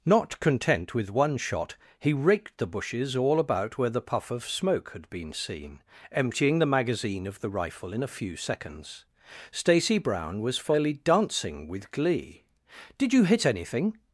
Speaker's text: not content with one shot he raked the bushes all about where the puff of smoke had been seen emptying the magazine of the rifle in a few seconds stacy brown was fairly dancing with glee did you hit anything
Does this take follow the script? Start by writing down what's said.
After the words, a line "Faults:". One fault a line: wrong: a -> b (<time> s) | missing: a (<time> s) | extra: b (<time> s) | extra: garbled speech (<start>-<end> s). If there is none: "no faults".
not content with one shot he raked the bushes all about where the puff of smoke had been seen emptying the magazine of the rifle in a few seconds stacy brown was fairly dancing with glee did you hit anything
Faults:
no faults